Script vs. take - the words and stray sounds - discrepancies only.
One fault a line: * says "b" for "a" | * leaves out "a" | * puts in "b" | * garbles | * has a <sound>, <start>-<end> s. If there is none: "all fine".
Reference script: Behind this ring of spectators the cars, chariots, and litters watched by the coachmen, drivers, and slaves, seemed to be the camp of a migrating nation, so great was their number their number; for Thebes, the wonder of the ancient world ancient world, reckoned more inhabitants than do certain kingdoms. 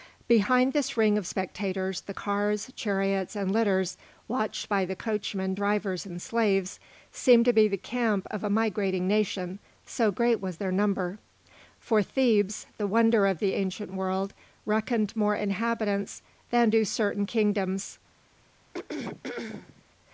* leaves out "their number"
* leaves out "ancient world"
* has a throat clearing, 18.7-19.8 s